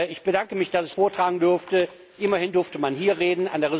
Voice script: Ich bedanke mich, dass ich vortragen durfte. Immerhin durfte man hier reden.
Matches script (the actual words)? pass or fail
pass